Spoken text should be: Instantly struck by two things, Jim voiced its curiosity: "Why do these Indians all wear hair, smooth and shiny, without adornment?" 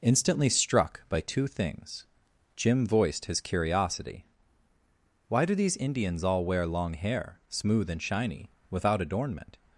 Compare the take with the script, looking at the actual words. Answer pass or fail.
fail